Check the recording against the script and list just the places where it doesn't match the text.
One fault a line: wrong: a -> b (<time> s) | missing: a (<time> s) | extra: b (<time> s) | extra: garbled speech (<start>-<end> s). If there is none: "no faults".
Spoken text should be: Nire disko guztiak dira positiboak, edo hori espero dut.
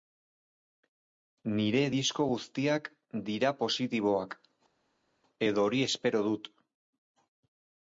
no faults